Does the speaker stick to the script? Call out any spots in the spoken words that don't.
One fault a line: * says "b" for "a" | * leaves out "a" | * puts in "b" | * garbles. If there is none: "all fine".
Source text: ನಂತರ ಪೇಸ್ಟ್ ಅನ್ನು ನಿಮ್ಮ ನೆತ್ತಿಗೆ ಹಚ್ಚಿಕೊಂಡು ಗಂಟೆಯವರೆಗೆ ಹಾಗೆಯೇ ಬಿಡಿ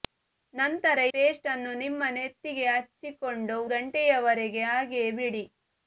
all fine